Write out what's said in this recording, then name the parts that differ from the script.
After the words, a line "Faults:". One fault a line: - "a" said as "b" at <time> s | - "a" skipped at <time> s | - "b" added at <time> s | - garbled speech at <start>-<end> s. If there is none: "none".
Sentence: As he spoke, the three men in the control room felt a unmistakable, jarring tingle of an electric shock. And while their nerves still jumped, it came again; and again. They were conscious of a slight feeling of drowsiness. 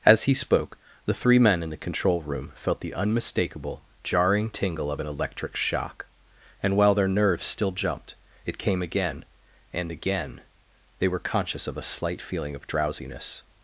As he spoke, the three men in the control room felt the unmistakable, jarring tingle of an electric shock. And while their nerves still jumped, it came again; and again. They were conscious of a slight feeling of drowsiness.
Faults:
- "a" said as "the" at 2.8 s